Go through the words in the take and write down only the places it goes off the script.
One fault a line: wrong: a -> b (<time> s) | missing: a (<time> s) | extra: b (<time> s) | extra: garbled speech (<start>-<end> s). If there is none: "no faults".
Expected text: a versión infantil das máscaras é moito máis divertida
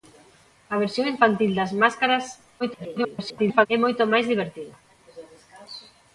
extra: garbled speech (2.6-3.7 s)